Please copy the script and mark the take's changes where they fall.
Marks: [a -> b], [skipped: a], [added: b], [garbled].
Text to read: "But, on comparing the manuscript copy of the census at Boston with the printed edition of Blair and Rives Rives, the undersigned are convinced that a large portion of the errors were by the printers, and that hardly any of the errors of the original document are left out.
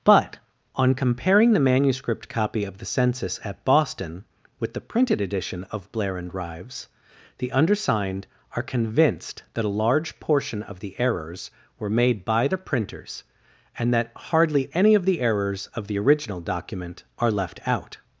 "But, on comparing the manuscript copy of the census at Boston with the printed edition of Blair and Rives [skipped: Rives,] the undersigned are convinced that a large portion of the errors were [added: made] by the printers, and that hardly any of the errors of the original document are left out.